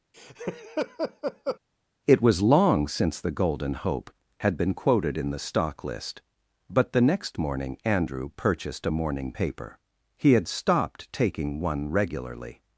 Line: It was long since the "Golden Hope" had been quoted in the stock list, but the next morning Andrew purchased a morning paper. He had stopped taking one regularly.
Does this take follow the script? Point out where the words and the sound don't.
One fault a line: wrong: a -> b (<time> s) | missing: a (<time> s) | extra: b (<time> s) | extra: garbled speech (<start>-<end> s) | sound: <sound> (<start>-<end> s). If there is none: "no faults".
sound: laugh (0.1-1.6 s)